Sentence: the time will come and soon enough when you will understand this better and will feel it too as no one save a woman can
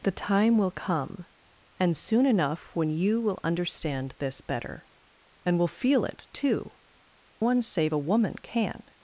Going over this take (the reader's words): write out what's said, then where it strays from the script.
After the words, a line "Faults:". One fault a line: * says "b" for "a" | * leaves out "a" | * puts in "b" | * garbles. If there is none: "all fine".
the time will come and soon enough when you will understand this better and will feel it too one save a woman can
Faults:
* leaves out "as no"